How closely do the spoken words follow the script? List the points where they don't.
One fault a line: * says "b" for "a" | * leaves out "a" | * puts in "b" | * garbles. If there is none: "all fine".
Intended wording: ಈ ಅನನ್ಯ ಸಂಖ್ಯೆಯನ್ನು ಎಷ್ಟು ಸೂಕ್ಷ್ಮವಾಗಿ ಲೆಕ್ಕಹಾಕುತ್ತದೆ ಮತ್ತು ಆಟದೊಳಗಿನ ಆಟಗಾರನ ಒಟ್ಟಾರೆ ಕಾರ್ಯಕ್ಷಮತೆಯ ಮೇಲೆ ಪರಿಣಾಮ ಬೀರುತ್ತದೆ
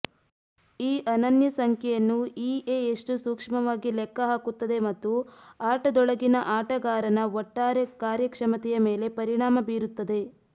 * puts in "ಇಎ"